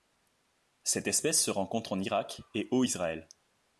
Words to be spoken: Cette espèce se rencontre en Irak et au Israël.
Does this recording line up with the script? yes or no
yes